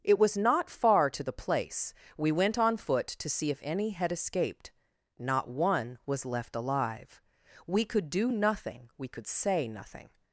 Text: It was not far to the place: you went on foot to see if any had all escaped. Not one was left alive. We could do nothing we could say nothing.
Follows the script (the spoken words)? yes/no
no